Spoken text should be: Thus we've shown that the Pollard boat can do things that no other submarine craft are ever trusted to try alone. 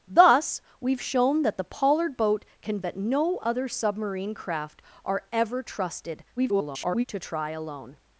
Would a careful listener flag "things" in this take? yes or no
yes